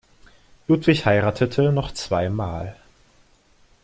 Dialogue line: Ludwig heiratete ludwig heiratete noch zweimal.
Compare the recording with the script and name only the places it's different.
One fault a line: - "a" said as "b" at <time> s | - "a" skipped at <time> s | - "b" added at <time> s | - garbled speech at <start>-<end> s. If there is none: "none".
- "ludwig heiratete" skipped at 1.7 s